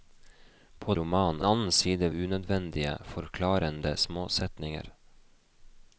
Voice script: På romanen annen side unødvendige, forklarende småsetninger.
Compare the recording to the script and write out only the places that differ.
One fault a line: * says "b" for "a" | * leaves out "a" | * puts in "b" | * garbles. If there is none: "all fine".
all fine